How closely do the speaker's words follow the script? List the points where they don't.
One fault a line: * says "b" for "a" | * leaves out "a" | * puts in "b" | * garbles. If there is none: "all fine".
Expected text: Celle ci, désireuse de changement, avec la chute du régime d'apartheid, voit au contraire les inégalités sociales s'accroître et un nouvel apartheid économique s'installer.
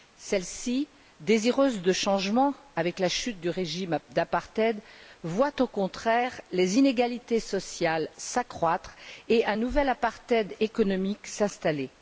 all fine